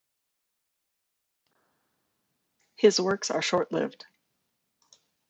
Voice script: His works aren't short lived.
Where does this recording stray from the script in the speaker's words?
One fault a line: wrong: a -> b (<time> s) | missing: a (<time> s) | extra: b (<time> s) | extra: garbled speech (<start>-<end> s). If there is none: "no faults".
wrong: aren't -> are (3.3 s)